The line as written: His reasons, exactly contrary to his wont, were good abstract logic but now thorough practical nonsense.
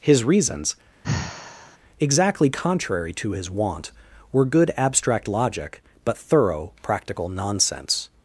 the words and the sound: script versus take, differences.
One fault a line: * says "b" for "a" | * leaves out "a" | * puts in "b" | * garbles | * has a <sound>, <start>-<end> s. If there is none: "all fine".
* has a sigh, 1.0-1.8 s
* leaves out "now"